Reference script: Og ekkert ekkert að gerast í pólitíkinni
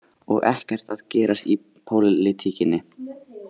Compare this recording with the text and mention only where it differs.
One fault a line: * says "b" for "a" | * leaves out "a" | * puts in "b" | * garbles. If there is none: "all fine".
* leaves out "ekkert"